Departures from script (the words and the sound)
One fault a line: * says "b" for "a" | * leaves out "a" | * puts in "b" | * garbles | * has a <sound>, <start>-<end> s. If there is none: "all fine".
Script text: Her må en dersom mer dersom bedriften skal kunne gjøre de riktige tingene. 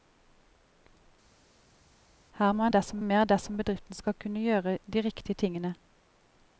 all fine